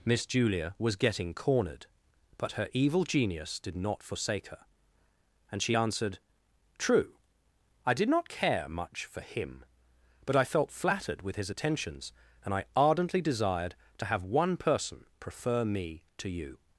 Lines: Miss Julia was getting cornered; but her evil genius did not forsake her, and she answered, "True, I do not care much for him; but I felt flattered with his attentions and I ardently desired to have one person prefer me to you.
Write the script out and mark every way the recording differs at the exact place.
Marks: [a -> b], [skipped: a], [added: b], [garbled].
Miss Julia was getting cornered; but her evil genius did not forsake her, and she answered, "True, I [do -> did] not care much for him; but I felt flattered with his attentions and I ardently desired to have one person prefer me to you.